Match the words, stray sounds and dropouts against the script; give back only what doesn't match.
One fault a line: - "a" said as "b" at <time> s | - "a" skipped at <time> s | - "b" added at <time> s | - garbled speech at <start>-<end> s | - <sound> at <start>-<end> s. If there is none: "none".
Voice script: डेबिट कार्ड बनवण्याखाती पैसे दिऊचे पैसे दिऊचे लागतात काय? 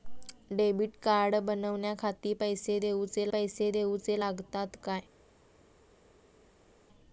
none